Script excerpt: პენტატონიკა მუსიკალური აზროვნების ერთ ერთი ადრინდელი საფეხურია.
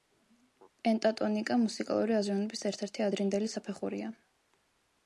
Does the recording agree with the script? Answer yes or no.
yes